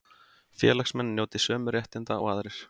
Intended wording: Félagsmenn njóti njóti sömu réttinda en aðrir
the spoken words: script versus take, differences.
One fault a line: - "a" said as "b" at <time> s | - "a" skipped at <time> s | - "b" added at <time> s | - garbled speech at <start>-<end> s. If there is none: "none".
- "njóti" skipped at 1.4 s
- "en" said as "og" at 2.2 s